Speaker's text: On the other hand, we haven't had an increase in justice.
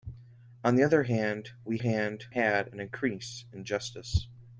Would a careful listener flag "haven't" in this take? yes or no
yes